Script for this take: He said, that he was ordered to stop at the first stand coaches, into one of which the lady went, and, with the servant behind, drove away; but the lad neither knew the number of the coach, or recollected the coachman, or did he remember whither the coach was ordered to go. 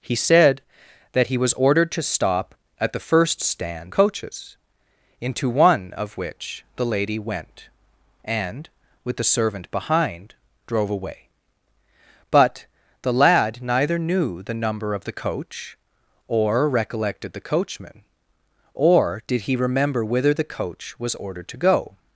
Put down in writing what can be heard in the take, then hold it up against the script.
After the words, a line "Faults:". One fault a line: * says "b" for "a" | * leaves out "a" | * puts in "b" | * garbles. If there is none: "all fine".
He said, that he was ordered to stop at the first stand coaches, into one of which the lady went, and, with the servant behind, drove away; but the lad neither knew the number of the coach, or recollected the coachman, or did he remember whither the coach was ordered to go.
Faults:
all fine